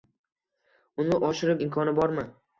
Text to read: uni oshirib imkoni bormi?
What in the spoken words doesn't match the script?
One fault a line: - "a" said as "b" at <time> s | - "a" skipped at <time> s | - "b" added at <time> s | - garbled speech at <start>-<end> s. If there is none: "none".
none